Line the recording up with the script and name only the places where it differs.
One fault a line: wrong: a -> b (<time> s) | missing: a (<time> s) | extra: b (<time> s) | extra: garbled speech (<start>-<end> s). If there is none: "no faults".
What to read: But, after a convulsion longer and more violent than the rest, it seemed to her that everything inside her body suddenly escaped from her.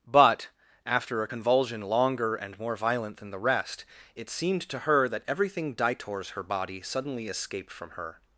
wrong: inside -> ditors (5.7 s)